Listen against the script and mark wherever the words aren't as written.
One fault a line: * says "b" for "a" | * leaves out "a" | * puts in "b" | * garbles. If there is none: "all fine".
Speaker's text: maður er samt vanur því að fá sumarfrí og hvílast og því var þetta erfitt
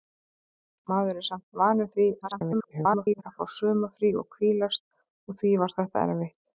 * garbles